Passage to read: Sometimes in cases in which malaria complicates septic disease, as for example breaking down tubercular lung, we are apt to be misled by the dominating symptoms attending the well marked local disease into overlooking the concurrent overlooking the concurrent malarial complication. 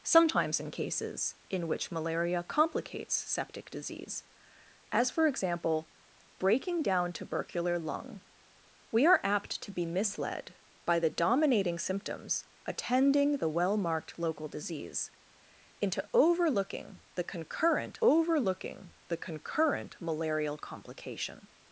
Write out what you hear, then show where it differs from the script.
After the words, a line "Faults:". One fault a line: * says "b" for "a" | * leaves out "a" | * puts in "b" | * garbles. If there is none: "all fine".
Sometimes in cases in which malaria complicates septic disease, as for example breaking down tubercular lung, we are apt to be misled by the dominating symptoms attending the well marked local disease into overlooking the concurrent overlooking the concurrent malarial complication.
Faults:
all fine